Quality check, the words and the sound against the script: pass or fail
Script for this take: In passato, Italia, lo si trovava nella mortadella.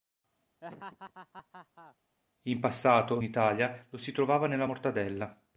fail